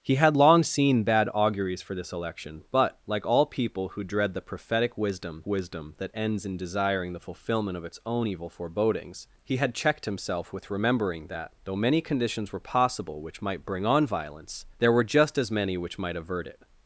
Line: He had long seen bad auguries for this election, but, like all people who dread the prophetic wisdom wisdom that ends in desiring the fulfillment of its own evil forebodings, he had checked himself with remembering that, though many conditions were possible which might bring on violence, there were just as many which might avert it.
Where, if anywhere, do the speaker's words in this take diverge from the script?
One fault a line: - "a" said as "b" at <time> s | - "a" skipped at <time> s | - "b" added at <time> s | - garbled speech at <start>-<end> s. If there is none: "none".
none